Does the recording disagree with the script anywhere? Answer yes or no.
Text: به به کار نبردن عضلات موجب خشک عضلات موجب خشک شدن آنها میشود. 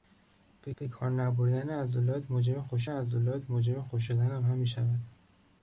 no